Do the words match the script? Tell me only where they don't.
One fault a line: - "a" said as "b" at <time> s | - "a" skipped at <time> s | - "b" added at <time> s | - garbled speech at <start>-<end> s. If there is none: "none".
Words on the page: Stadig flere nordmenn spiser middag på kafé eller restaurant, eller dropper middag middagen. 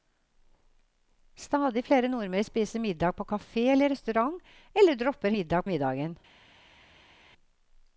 none